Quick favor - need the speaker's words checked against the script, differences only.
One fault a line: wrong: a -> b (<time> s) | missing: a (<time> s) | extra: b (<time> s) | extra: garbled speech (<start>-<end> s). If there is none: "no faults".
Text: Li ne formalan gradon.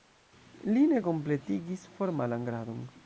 extra: kompletigis (1.1 s)